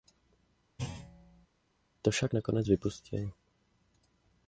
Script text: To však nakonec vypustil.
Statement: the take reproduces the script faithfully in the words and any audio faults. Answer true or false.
false